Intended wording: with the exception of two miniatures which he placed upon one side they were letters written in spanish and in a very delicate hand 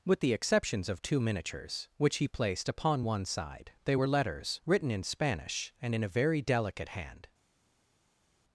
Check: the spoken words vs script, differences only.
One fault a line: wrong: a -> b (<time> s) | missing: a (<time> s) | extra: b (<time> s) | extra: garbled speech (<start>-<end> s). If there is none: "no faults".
wrong: exception -> exceptions (0.3 s)